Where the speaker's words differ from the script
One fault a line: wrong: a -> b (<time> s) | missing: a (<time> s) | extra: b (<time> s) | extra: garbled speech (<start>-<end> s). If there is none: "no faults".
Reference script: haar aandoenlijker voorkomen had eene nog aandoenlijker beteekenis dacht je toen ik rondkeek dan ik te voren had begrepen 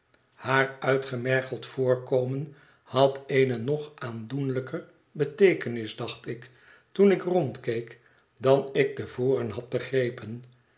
wrong: aandoenlijker -> uitgemergeld (0.8 s)
wrong: je -> ik (6.3 s)